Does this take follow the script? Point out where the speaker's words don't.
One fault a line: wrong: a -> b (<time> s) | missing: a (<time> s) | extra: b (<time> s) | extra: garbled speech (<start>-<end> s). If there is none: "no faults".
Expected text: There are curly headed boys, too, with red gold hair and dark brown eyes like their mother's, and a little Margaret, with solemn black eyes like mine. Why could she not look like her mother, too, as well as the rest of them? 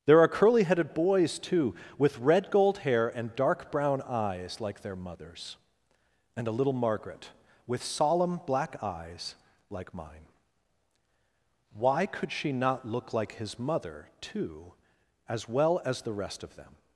wrong: her -> his (13.3 s)